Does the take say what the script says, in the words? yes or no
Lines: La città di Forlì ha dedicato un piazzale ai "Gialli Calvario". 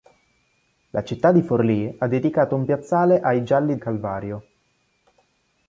yes